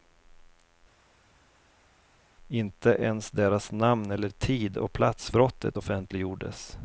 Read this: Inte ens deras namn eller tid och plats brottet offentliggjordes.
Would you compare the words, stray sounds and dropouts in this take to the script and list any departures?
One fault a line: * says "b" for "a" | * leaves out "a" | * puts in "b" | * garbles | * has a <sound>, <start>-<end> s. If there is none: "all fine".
all fine